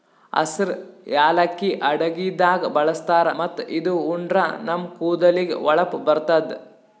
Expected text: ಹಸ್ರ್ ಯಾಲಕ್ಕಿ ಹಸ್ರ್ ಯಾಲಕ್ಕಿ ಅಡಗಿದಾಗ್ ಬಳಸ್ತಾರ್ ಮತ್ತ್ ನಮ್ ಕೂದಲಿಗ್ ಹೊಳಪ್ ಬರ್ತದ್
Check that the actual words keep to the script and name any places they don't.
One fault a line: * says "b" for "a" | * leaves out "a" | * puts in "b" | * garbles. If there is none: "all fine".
* leaves out "ಹಸ್ರ್ ಯಾಲಕ್ಕಿ"
* puts in "ಇದು ಉಂಡ್ರ"